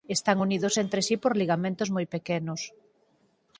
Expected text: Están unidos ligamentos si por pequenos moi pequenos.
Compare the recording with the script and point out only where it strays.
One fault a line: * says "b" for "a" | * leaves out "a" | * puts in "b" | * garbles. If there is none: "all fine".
* says "entre" for "ligamentos"
* says "ligamentos" for "pequenos"